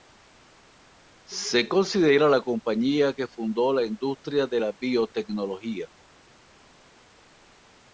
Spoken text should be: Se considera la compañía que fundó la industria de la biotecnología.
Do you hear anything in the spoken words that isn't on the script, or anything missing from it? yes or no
no